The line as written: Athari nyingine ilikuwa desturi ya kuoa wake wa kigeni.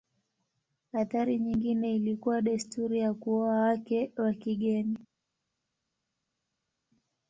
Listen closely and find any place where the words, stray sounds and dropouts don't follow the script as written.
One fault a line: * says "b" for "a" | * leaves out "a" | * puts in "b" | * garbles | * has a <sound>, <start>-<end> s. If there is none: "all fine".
all fine